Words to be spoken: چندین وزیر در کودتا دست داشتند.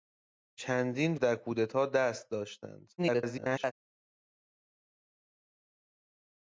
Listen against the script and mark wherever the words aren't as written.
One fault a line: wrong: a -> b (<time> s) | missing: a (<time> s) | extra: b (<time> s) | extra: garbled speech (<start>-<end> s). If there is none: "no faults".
missing: وزیر (1.2 s)
extra: garbled speech (3.0-3.7 s)